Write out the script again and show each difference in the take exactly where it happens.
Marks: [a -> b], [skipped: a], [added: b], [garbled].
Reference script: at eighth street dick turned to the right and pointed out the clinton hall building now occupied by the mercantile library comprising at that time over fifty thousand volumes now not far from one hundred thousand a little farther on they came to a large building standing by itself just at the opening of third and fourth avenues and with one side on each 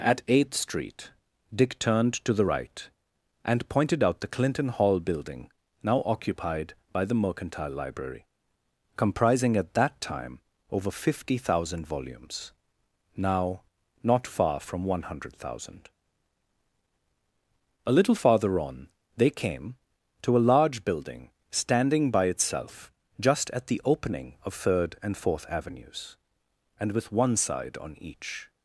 at eighth street dick turned to the right and pointed out the clinton hall building now occupied by the mercantile library comprising at that time over fifty thousand volumes now not far from one hundred thousand a little farther on they came to a large building standing by itself just at the opening of third and fourth avenues and with one side on each